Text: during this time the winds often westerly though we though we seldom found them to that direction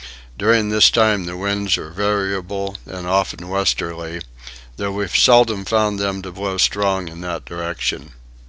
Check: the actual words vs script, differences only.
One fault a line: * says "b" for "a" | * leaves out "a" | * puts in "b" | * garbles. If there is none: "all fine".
* puts in "are variable and"
* leaves out "though we"
* puts in "blow strong in"